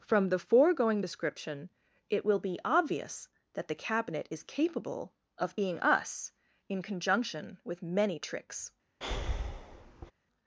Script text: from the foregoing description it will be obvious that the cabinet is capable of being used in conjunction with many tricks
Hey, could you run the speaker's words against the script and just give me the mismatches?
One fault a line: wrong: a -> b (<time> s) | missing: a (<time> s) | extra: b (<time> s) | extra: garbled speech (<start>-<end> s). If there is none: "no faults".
wrong: used -> us (5.8 s)